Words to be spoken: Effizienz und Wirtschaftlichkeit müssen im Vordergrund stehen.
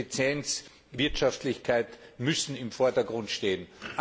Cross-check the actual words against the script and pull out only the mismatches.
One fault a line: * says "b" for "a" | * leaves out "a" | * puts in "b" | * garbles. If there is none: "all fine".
all fine